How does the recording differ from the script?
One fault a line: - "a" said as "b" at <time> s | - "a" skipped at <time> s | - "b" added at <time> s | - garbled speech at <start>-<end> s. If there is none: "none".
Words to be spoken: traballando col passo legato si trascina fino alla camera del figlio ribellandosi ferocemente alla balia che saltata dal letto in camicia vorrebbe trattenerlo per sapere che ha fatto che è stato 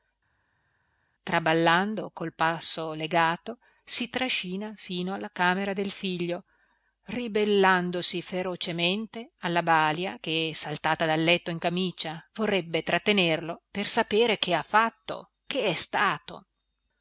none